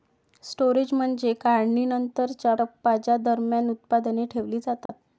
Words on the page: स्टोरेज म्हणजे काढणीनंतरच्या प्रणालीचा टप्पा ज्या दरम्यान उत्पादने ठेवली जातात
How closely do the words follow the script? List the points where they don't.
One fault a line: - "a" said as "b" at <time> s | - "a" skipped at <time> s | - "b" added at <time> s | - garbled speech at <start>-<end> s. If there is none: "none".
- "प्रणालीचा" skipped at 2.5 s